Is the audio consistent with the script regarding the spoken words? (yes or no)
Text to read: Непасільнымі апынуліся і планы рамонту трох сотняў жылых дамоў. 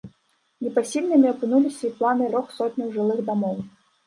no